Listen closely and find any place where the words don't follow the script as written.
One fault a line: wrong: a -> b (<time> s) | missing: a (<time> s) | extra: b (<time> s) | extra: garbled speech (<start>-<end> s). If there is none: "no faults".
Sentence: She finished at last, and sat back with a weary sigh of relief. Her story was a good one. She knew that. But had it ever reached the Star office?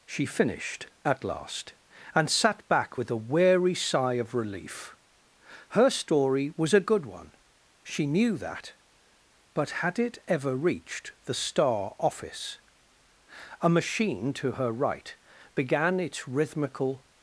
extra: A machine to her right began its rhythmical (13.6 s)